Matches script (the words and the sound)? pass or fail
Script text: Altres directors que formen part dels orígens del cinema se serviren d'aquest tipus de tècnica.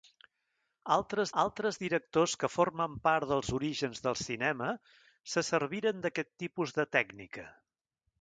fail